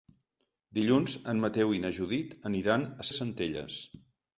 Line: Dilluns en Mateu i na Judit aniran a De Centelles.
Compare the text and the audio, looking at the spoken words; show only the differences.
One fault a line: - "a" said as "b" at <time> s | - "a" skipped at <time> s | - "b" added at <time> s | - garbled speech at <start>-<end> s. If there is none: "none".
none